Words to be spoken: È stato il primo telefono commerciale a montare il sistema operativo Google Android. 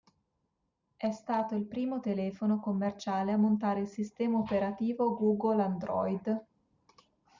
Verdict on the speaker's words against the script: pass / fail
pass